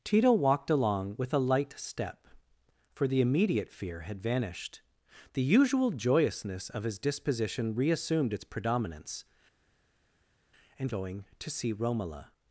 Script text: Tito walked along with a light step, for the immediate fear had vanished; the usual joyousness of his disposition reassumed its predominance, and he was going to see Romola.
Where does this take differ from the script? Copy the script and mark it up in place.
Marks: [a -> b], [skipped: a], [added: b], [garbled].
Tito walked along with a light step, for the immediate fear had vanished; the usual joyousness of his disposition reassumed its predominance, and [skipped: he was] going to see Romola.